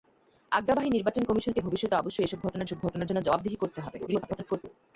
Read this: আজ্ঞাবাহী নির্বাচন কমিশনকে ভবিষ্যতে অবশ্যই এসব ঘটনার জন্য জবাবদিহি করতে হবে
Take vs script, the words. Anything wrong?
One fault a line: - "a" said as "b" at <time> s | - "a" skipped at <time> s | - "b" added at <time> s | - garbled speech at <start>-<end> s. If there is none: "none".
- "এসব ঘটনার" added at 2.6 s
- garbled speech at 4.1-4.6 s